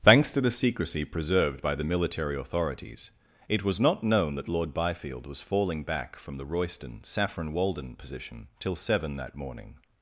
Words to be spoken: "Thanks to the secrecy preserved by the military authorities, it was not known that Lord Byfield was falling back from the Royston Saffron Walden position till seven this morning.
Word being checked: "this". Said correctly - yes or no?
no